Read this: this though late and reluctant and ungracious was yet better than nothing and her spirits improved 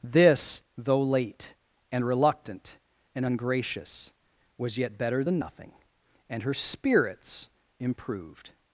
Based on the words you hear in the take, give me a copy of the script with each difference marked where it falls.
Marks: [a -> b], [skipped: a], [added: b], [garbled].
this though late and reluctant and ungracious was yet better than nothing and her spirits improved